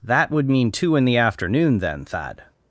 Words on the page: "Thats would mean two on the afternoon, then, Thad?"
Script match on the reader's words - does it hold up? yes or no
no